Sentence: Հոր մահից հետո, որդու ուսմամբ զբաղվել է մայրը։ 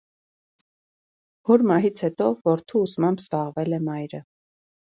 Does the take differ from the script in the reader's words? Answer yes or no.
no